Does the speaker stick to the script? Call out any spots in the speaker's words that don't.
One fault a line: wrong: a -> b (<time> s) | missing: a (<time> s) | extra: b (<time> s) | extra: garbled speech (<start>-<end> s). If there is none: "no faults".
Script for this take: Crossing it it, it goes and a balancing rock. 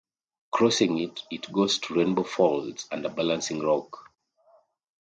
wrong: it goes -> goes to Rainbow Falls (1.5 s)